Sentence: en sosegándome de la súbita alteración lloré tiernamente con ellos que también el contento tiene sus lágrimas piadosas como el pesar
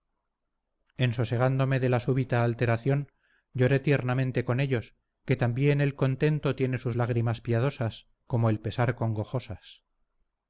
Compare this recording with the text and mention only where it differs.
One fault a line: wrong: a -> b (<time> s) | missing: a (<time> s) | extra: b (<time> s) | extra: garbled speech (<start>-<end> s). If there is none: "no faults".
no faults